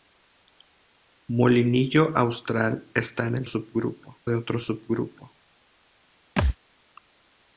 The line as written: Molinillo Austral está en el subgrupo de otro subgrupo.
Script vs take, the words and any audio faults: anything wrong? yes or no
yes